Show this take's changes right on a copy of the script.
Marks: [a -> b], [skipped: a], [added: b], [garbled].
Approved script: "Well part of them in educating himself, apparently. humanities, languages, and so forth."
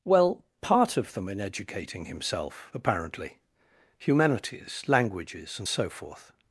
"Well part of them in educating himself, apparently. humanities, languages, and so forth."